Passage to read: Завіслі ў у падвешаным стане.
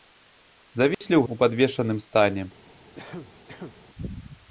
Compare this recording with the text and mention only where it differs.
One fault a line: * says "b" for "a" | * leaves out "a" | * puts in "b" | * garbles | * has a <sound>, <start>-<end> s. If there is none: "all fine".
* has a dropout, 0.9-1.0 s
* has a cough, 3.0-3.8 s